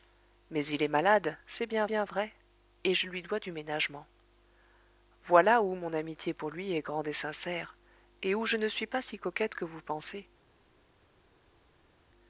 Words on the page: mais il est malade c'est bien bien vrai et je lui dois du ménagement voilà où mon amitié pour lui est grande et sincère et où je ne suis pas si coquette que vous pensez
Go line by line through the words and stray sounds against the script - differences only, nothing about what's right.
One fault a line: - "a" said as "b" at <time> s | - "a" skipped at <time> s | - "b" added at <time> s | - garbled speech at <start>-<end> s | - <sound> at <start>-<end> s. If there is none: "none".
none